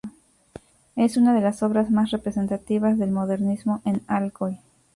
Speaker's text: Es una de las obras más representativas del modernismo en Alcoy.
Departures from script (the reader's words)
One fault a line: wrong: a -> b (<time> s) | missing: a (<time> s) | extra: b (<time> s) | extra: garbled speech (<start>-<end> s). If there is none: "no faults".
no faults